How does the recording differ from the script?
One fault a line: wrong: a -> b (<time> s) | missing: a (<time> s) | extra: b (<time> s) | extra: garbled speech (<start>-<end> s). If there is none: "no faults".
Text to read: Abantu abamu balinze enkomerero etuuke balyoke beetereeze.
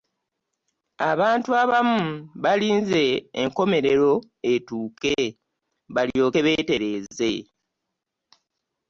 no faults